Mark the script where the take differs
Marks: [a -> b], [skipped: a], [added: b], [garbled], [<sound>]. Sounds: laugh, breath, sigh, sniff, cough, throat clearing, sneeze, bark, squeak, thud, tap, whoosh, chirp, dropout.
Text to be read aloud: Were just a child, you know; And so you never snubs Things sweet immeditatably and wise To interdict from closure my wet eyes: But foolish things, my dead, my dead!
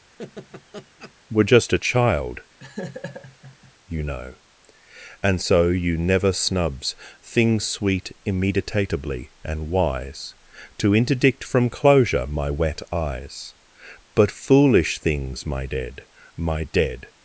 [laugh] Were just a child, [laugh] you know; And so you never snubs Things sweet immeditatably and wise To interdict from closure my wet eyes: But foolish things, my dead, my dead!